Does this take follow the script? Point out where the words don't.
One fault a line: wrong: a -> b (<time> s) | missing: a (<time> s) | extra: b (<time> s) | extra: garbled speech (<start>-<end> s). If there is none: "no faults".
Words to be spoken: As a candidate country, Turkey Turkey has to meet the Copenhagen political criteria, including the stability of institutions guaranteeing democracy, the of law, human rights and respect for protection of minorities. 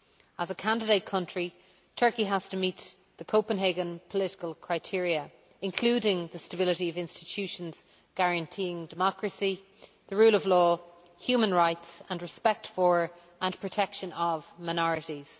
missing: Turkey (2.2 s)
extra: rule (10.2 s)
extra: and (13.4 s)